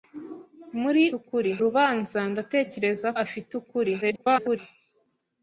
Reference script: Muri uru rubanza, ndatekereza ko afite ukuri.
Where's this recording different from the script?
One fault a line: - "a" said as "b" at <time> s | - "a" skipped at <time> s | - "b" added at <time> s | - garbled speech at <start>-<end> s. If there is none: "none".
- "uru" said as "ukuri" at 1.2 s
- "ko" skipped at 3.1 s
- garbled speech at 4.0-4.6 s